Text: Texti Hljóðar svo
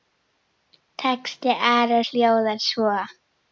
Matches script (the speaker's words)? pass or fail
fail